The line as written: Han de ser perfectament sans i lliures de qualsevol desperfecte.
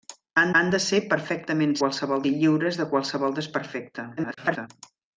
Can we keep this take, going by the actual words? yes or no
no